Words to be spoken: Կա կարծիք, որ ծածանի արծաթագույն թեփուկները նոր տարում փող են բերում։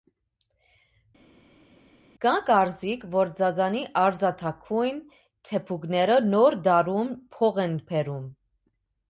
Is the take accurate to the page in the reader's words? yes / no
yes